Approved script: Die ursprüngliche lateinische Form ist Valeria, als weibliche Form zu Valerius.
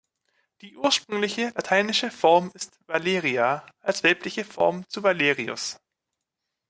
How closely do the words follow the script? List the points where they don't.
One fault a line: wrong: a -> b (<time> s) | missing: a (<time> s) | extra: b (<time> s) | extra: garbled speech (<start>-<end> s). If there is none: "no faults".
no faults